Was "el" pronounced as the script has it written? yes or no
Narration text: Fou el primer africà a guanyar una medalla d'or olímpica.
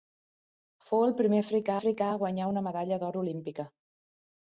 yes